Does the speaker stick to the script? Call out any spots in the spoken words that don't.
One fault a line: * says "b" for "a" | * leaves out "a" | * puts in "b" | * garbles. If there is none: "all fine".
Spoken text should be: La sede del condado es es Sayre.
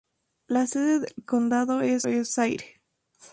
all fine